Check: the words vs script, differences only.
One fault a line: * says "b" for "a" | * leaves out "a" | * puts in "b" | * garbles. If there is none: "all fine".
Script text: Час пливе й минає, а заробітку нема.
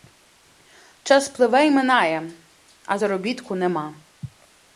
all fine